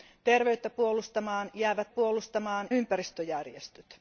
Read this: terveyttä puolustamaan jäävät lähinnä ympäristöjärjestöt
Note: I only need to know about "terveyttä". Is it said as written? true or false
true